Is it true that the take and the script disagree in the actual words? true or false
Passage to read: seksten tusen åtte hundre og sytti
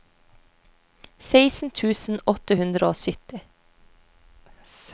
false